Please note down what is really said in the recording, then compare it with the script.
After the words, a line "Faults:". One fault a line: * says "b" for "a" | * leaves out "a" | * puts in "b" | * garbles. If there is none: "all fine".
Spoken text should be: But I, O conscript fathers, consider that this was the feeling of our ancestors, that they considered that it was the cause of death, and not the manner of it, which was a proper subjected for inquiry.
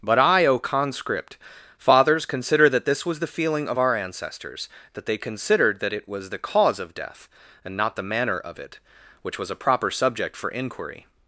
But I, O conscript fathers, consider that this was the feeling of our ancestors, that they considered that it was the cause of death, and not the manner of it, which was a proper subject for inquiry.
Faults:
* says "subject" for "subjected"